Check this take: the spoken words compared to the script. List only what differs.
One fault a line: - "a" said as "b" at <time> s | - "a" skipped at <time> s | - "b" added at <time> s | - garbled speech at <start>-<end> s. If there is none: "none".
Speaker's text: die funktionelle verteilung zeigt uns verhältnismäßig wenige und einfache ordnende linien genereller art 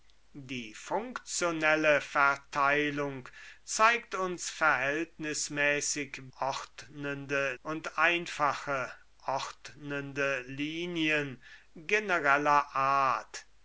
- "wenige" said as "ordnende" at 6.4 s